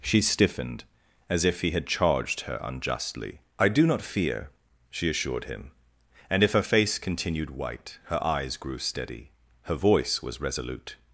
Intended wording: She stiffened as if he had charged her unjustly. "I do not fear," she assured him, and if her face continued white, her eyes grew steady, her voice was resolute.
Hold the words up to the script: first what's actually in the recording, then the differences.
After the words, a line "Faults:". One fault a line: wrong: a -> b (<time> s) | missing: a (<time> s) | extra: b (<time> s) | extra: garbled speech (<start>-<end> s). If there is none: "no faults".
She stiffened as if he had charged her unjustly. "I do not fear," she assured him, and if her face continued white, her eyes grew steady, her voice was resolute.
Faults:
no faults